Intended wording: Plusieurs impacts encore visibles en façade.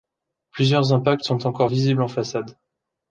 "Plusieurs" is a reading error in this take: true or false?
false